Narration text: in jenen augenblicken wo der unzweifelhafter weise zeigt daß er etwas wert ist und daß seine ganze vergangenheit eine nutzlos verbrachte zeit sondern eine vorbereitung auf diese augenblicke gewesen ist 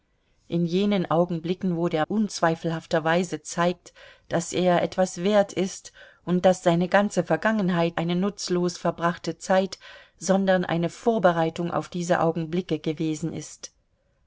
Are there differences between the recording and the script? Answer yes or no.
no